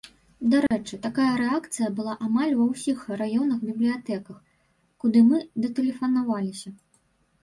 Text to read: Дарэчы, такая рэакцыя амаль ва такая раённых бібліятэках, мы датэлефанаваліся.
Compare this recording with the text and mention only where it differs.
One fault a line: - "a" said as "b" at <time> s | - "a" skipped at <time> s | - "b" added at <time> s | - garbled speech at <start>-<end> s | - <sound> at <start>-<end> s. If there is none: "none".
- dropout at 0.7-0.7 s
- "была" added at 2.0 s
- "такая" said as "ўсіх" at 2.7 s
- "куды" added at 5.1 s